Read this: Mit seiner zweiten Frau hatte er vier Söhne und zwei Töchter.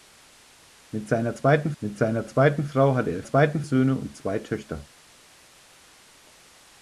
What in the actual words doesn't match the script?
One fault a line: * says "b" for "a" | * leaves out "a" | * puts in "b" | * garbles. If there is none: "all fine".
* puts in "mit seiner zweiten"
* says "zweiten" for "vier"